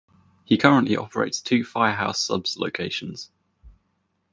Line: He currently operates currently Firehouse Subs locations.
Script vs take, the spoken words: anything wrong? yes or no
yes